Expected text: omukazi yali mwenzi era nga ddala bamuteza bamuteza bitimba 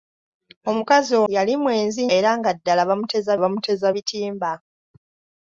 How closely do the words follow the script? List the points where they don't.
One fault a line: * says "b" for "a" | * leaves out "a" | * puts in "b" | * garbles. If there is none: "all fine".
all fine